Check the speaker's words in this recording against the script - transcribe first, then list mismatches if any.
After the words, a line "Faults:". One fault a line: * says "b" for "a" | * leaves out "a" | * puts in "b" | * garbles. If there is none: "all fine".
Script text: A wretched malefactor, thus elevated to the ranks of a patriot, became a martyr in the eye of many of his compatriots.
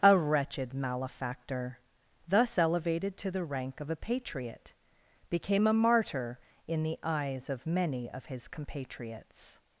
A wretched malefactor, thus elevated to the rank of a patriot, became a martyr in the eyes of many of his compatriots.
Faults:
* says "rank" for "ranks"
* says "eyes" for "eye"